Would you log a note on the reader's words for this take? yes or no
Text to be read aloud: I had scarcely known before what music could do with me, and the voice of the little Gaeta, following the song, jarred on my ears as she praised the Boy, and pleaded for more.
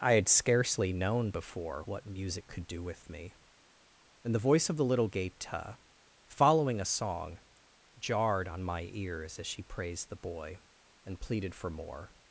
yes